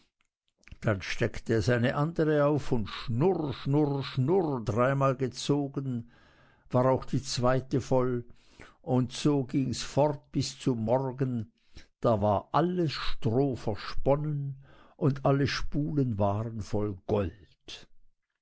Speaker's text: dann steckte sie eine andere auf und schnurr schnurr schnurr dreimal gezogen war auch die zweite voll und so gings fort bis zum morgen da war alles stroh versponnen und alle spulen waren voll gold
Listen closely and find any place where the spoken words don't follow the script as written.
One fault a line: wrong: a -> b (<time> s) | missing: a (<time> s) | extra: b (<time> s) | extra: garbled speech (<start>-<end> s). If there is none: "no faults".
wrong: sie -> es (1.5 s)